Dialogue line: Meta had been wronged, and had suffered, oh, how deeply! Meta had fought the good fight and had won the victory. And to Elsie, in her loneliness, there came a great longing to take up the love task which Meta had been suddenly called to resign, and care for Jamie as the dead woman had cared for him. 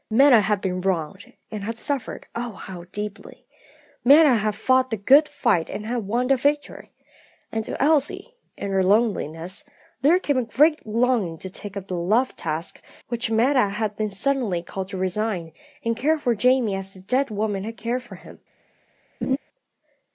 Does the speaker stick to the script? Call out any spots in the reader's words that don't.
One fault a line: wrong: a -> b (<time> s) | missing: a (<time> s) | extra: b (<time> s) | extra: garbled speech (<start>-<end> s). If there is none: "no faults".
no faults